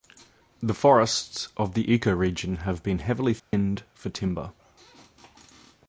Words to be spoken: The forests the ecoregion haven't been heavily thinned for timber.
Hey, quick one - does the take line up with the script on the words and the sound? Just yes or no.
no